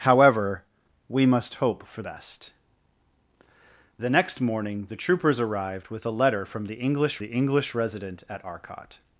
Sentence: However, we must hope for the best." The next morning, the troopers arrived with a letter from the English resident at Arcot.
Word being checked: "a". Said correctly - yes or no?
yes